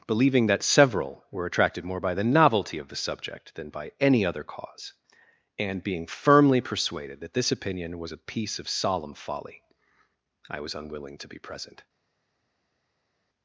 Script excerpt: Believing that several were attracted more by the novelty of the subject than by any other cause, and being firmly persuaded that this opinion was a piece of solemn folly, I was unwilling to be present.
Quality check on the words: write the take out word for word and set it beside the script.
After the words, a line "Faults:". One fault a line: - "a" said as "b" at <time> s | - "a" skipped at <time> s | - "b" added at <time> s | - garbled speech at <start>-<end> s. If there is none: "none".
Believing that several were attracted more by the novelty of the subject than by any other cause, and being firmly persuaded that this opinion was a piece of solemn folly, I was unwilling to be present.
Faults:
none